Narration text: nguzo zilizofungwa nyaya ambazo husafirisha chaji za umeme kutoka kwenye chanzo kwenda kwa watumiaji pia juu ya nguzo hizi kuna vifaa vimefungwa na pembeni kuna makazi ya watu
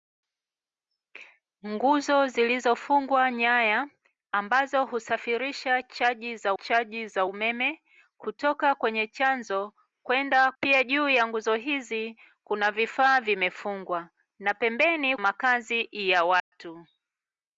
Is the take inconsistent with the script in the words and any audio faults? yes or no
yes